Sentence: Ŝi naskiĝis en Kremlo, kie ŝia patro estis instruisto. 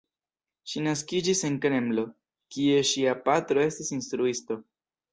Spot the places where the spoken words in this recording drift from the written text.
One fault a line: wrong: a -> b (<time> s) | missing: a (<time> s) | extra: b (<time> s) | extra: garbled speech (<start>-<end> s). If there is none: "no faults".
no faults